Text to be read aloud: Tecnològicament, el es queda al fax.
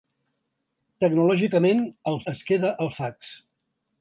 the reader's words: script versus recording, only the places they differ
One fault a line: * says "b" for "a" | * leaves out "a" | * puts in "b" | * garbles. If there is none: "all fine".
all fine